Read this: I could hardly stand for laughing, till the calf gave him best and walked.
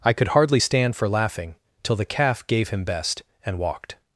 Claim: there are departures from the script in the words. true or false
false